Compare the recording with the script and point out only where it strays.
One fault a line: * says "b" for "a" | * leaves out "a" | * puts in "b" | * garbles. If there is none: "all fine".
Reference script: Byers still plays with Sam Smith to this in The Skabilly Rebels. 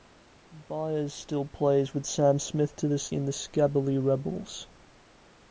all fine